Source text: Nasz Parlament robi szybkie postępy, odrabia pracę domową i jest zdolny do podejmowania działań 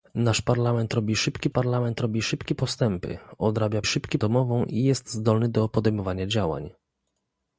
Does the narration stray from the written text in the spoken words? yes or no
yes